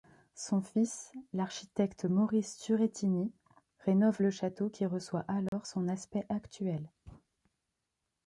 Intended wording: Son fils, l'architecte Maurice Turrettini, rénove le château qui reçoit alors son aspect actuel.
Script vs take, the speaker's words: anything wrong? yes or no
no